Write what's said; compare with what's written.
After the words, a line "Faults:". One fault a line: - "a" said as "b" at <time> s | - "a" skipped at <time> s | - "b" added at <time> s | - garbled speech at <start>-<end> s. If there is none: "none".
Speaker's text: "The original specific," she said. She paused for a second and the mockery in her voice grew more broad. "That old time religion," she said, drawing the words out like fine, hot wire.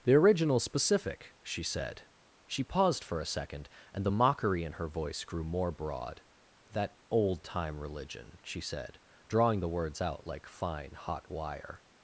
"The original specific," she said. She paused for a second and the mockery in her voice grew more broad. "That old time religion," she said, drawing the words out like fine, hot wire.
Faults:
none